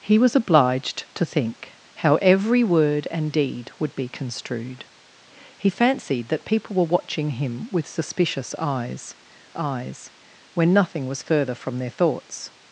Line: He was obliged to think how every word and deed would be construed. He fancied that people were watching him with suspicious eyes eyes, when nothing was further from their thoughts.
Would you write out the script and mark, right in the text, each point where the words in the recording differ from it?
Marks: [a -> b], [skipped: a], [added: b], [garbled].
He was obliged to think how every word and deed would be construed. He fancied that people were watching him with suspicious eyes eyes, when nothing was further from their thoughts.